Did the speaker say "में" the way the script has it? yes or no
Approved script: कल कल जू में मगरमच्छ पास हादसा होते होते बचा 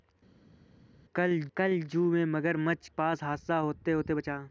yes